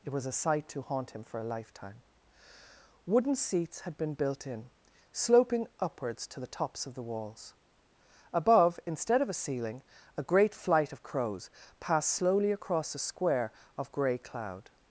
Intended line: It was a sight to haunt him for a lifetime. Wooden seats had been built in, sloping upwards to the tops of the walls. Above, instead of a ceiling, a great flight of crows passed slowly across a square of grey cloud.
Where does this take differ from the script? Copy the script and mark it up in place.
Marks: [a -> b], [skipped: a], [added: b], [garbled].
It was a sight to haunt him for a lifetime. Wooden seats had been built in, sloping upwards to the tops of the walls. Above, instead of a ceiling, a great flight of crows passed slowly across a square of grey cloud.